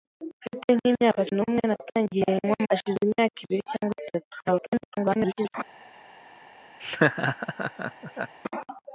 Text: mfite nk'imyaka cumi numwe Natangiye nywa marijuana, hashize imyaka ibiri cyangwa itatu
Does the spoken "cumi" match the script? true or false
false